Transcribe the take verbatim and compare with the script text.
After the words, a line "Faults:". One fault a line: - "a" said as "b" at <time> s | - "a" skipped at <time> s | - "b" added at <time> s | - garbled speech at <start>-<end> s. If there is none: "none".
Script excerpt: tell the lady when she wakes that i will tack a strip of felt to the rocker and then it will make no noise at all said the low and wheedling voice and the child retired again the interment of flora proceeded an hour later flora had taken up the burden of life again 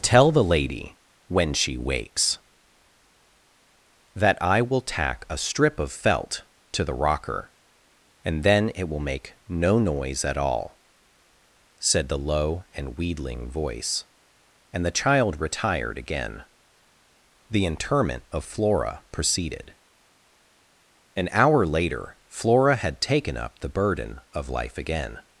tell the lady when she wakes that i will tack a strip of felt to the rocker and then it will make no noise at all said the low and wheedling voice and the child retired again the interment of flora proceeded an hour later flora had taken up the burden of life again
Faults:
none